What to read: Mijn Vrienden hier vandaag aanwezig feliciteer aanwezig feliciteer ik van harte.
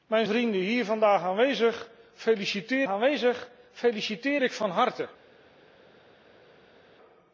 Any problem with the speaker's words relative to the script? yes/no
no